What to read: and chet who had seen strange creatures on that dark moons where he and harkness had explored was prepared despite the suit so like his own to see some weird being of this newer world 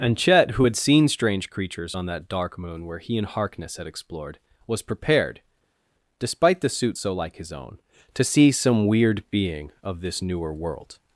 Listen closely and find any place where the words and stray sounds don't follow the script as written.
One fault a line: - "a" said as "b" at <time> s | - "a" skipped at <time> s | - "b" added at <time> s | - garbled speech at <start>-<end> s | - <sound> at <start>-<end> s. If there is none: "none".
- "moons" said as "moon" at 2.6 s